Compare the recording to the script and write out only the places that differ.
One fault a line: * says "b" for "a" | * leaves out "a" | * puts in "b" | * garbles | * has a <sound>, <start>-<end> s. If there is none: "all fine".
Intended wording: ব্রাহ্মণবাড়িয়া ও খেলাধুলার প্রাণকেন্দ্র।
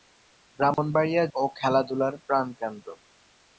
* has a dropout, 0.7-0.8 s